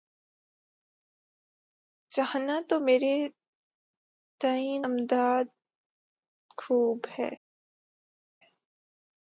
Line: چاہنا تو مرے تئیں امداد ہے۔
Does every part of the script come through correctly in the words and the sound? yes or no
no